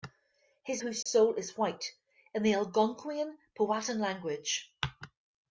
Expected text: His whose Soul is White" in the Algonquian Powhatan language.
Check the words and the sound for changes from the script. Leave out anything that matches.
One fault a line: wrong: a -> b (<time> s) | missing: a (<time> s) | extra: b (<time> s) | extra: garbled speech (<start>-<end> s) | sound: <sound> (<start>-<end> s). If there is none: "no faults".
sound: dropout (1.0-1.1 s)